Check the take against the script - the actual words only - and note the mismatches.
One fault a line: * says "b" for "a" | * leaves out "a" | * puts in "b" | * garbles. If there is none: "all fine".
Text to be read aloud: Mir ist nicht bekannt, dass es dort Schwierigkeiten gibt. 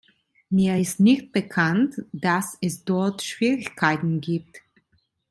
all fine